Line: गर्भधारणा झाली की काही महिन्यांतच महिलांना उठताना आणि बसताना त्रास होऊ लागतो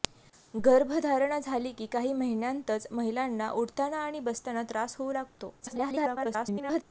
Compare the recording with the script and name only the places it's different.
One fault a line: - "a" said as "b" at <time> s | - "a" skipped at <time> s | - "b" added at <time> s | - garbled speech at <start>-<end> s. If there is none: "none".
- garbled speech at 5.6-6.8 s